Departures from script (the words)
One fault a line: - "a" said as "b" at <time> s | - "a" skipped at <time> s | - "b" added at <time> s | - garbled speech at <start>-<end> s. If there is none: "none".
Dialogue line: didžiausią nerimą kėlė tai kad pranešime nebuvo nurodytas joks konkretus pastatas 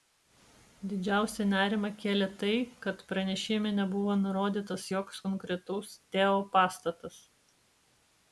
- "teo" added at 6.2 s